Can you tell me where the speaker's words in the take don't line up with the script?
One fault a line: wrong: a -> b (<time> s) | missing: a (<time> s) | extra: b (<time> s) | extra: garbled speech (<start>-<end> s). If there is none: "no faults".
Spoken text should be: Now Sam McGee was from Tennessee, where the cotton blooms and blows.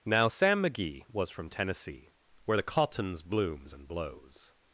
wrong: cotton -> cottons (2.6 s)